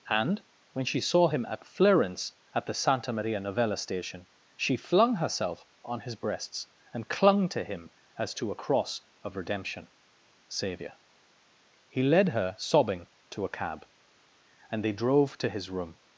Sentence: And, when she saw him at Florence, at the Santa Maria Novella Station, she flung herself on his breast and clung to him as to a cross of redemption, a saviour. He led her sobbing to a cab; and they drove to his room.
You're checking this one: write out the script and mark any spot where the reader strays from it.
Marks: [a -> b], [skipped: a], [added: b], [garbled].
And, when she saw him at Florence, at the Santa Maria Novella Station, she flung herself on his [breast -> breasts] and clung to him as to a cross of redemption, [skipped: a] saviour. He led her sobbing to a cab; and they drove to his room.